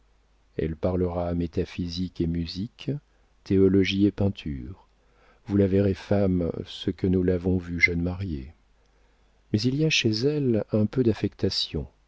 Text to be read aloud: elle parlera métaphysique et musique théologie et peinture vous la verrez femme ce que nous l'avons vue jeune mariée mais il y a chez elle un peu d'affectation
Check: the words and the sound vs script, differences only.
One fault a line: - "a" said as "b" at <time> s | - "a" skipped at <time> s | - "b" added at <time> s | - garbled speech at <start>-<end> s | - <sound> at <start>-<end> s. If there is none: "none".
none